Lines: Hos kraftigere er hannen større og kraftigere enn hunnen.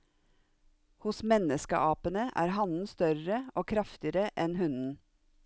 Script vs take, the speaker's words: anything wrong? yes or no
yes